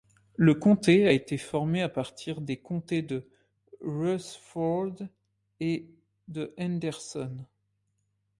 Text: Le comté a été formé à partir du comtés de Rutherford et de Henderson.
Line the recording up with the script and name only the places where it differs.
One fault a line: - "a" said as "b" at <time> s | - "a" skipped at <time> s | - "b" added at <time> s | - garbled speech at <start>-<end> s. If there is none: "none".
- "du" said as "des" at 2.4 s